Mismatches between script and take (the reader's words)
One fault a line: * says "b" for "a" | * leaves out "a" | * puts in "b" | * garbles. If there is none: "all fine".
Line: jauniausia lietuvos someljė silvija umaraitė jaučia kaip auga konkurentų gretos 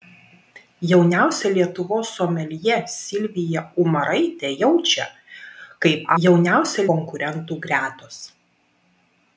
* says "jauniausia" for "auga"